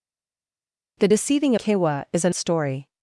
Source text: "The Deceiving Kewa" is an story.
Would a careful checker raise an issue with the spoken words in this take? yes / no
no